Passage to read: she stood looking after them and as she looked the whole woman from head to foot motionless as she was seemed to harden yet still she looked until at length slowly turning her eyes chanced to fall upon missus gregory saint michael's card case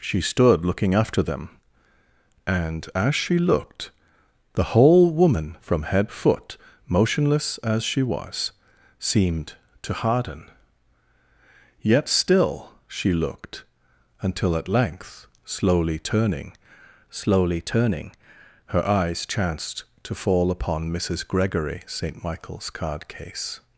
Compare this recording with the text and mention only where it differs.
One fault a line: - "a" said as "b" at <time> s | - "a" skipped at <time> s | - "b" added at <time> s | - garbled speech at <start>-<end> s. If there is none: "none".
- "to" skipped at 6.1 s
- "slowly turning" added at 17.1 s